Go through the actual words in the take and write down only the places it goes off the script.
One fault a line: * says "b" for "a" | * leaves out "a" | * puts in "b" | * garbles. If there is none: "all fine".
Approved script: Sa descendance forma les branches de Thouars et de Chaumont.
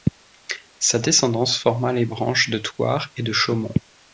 all fine